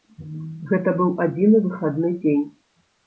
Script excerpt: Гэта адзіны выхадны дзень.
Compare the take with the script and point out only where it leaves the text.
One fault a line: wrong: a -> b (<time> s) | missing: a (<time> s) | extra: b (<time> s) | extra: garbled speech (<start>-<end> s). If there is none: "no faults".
extra: быў (1.0 s)